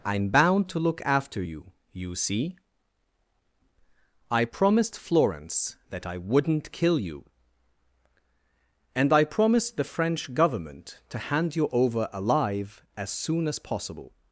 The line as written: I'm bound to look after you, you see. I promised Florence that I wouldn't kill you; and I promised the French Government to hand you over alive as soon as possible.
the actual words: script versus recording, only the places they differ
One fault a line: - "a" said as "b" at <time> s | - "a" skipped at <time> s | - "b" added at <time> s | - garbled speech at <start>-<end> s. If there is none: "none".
none